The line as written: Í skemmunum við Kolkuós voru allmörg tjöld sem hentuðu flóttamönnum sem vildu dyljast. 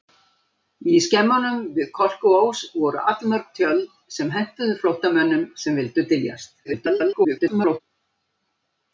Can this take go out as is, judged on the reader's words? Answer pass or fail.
fail